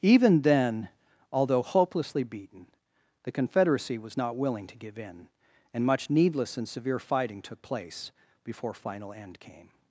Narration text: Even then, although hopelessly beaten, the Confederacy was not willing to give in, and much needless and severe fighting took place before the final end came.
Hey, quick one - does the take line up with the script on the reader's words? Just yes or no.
no